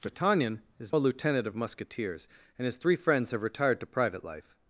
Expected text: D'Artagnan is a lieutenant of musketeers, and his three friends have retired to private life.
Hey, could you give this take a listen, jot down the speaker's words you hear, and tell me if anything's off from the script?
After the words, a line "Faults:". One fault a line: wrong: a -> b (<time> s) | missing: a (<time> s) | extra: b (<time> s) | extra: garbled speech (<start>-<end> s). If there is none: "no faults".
D'Artagnan is a lieutenant of musketeers, and his three friends have retired to private life.
Faults:
no faults